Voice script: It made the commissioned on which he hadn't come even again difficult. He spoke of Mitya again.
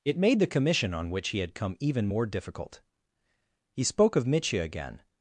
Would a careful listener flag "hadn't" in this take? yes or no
yes